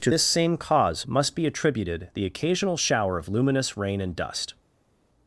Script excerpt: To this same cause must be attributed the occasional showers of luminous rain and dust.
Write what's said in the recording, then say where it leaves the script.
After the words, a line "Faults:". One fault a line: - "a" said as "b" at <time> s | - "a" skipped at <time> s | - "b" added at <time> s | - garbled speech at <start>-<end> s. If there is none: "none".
To this same cause must be attributed the occasional shower of luminous rain and dust.
Faults:
- "showers" said as "shower" at 2.8 s